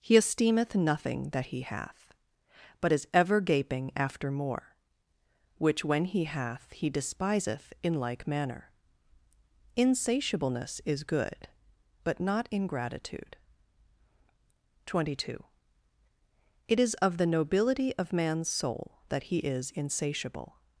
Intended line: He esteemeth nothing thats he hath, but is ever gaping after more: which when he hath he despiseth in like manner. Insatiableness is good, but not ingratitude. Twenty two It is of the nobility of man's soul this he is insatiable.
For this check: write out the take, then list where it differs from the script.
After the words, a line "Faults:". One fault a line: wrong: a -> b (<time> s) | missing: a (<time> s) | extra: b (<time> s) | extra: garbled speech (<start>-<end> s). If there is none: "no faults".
He esteemeth nothing that he hath, but is ever gaping after more: which when he hath he despiseth in like manner. Insatiableness is good, but not ingratitude. Twenty two It is of the nobility of man's soul that he is insatiable.
Faults:
wrong: thats -> that (1.3 s)
wrong: this -> that (19.1 s)